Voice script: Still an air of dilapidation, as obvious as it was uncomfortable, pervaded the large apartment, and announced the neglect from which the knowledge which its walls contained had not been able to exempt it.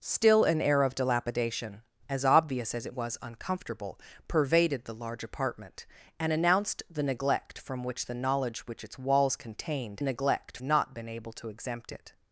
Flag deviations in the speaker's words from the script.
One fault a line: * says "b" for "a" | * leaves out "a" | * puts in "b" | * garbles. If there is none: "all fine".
* says "neglect" for "had"